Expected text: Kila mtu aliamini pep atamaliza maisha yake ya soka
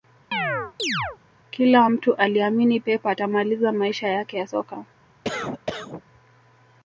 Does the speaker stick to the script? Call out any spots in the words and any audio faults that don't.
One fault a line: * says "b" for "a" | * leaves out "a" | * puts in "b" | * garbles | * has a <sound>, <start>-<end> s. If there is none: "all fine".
* has a chirp, 0.3-1.2 s
* has a cough, 5.2-6.0 s